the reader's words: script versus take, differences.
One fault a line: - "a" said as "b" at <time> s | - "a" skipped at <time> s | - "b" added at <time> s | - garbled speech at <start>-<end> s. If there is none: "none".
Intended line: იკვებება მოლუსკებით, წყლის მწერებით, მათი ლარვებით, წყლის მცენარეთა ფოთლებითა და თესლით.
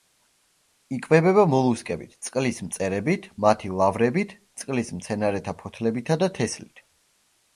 none